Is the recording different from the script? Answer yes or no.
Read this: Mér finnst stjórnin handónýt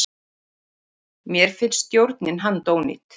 no